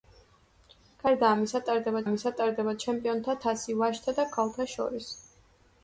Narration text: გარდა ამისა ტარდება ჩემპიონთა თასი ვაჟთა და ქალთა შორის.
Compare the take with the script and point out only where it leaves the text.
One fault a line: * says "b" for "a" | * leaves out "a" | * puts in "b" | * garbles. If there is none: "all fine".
* puts in "ამისა ტარდება"